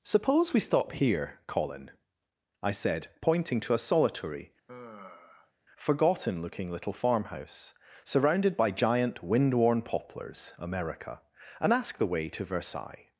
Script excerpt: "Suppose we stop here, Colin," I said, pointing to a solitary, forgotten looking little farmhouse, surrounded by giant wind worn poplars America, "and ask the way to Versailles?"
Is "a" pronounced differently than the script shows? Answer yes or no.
no